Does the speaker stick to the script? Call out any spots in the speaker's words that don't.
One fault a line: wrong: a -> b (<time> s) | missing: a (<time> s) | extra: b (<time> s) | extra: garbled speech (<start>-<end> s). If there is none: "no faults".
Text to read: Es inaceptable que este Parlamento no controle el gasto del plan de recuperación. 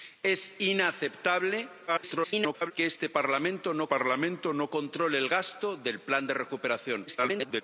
extra: garbled speech (1.9-2.7 s)
extra: Parlamento no (3.9 s)
extra: garbled speech (7.1-7.6 s)